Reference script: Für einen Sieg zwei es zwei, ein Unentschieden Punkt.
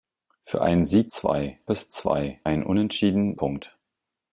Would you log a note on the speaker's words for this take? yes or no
no